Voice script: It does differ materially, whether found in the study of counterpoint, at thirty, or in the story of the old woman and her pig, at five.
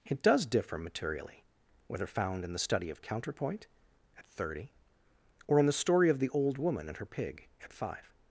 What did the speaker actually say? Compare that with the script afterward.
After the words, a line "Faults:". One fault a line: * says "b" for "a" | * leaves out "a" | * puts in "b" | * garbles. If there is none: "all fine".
It does differ materially, whether found in the study of counterpoint, at thirty, or in the story of the old woman and her pig, at five.
Faults:
all fine